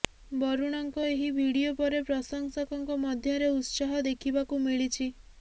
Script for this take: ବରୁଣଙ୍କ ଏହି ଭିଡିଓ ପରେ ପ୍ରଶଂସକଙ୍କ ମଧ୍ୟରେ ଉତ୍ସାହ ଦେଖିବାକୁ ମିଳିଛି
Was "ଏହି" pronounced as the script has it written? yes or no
yes